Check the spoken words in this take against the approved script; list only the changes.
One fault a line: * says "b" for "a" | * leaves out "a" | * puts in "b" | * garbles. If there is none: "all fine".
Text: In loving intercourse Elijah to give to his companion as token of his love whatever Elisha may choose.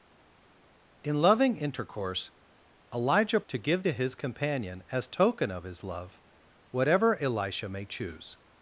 all fine